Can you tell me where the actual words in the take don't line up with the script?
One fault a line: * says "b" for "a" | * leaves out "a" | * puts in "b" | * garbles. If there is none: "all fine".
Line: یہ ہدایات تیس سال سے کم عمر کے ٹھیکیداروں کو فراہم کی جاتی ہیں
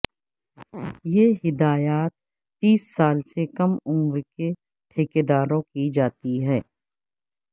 * leaves out "کو فراہم"